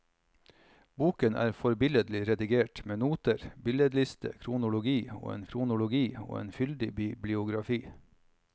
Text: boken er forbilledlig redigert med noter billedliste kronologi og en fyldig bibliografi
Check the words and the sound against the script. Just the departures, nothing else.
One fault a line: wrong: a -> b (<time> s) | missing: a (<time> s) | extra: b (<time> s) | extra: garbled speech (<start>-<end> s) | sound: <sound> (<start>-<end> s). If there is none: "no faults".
extra: kronologi og en (5.5 s)